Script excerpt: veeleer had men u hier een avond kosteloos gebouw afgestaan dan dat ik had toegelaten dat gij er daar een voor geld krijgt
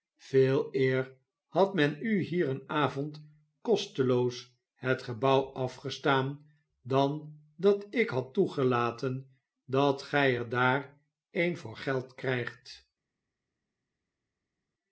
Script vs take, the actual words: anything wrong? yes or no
yes